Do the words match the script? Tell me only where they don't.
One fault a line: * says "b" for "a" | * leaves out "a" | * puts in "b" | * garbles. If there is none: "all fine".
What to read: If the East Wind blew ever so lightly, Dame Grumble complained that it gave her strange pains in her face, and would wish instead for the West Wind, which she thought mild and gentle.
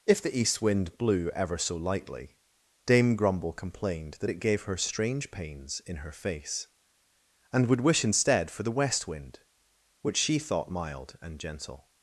all fine